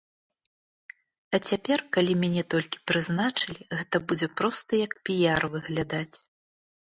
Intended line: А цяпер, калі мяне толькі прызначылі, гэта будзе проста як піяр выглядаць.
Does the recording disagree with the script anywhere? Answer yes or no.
no